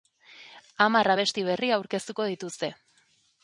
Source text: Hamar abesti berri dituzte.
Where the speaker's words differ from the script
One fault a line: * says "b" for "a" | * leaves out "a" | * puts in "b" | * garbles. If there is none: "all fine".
* puts in "aurkeztuko"